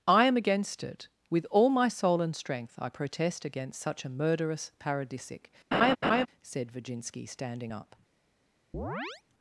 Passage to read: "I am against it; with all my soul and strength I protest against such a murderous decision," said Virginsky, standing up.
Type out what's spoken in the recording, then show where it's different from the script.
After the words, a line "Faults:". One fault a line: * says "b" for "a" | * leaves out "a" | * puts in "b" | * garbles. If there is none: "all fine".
"I am against it; with all my soul and strength I protest against such a murderous paradisic," said Virginsky, standing up.
Faults:
* says "paradisic" for "decision"